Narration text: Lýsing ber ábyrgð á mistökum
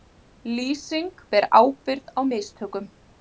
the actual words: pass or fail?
pass